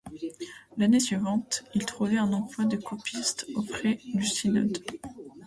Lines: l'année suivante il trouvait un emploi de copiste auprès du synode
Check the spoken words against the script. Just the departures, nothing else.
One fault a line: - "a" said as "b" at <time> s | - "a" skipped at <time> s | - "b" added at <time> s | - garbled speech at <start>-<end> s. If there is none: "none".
none